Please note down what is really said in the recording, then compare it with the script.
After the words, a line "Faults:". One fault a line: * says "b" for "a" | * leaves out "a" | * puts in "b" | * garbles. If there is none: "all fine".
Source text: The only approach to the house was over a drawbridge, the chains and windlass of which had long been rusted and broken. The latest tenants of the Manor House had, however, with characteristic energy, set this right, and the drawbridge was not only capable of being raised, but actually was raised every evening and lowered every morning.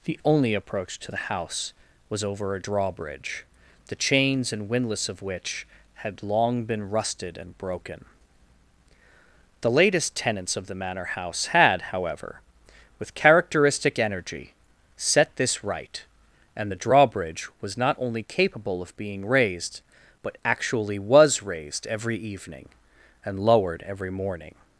The only approach to the house was over a drawbridge, the chains and windlass of which had long been rusted and broken. The latest tenants of the Manor House had, however, with characteristic energy, set this right, and the drawbridge was not only capable of being raised, but actually was raised every evening and lowered every morning.
Faults:
all fine